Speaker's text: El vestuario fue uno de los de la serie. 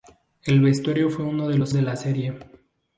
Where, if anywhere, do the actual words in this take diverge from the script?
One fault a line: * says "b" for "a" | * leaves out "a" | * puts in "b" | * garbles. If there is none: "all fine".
all fine